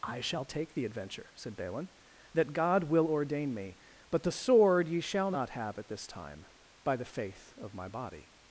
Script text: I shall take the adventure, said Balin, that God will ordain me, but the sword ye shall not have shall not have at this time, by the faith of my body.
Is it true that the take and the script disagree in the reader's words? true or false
true